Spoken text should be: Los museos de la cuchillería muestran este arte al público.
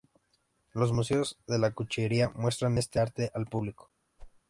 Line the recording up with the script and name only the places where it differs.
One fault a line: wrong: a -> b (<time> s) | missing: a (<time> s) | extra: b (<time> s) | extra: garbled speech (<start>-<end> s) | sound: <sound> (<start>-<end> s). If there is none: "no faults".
sound: whoosh (4.2-4.4 s)